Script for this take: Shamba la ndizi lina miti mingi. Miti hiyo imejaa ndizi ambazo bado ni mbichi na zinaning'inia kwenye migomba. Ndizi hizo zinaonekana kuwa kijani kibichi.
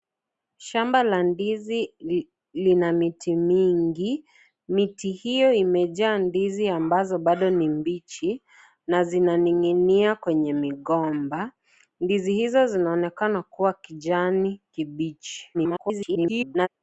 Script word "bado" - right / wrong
right